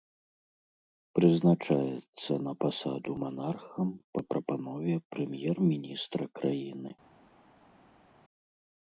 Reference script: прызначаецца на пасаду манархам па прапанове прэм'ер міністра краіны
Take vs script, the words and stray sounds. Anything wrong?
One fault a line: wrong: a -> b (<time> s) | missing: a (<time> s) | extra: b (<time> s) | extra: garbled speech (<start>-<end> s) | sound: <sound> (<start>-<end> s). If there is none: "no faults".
no faults